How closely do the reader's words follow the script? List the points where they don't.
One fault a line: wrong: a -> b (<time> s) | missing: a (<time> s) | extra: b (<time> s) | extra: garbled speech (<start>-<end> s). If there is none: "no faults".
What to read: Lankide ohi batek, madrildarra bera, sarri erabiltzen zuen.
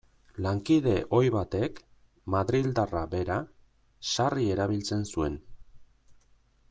no faults